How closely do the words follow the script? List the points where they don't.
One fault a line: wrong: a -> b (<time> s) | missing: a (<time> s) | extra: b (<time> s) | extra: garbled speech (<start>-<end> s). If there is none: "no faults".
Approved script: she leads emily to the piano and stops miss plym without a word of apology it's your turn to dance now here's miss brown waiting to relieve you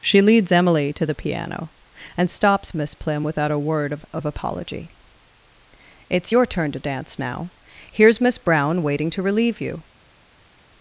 extra: of (4.1 s)